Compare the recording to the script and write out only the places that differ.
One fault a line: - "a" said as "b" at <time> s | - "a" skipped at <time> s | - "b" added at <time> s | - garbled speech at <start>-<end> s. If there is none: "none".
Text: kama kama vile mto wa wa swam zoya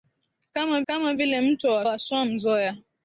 none